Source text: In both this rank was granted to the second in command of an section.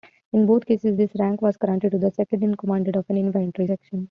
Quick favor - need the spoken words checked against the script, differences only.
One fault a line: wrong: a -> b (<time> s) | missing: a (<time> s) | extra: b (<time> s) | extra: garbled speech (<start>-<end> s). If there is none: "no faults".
extra: cases (0.7 s)
extra: infantry (3.2 s)